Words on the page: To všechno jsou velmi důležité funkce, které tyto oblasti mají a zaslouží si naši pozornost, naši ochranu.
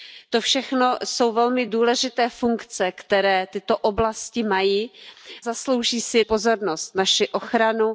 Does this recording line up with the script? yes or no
no